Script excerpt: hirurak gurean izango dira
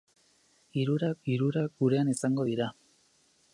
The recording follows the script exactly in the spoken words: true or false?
false